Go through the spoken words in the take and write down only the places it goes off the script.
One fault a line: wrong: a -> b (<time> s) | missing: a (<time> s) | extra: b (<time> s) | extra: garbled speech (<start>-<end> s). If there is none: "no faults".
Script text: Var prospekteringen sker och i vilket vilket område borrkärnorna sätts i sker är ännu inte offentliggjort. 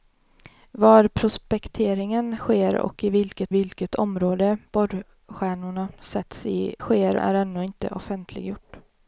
no faults